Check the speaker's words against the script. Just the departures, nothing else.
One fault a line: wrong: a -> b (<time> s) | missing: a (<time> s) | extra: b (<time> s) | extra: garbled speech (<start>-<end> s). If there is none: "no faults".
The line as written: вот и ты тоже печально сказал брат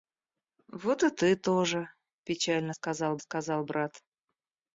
extra: сказал (3.2 s)